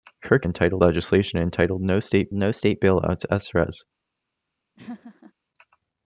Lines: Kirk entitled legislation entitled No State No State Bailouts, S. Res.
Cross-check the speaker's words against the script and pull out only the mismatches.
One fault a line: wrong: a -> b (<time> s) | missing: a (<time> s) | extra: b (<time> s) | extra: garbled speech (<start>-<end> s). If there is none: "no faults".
no faults